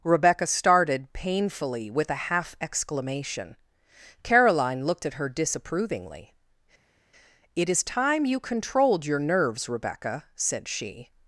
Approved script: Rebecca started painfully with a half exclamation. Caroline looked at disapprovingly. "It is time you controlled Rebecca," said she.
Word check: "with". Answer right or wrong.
right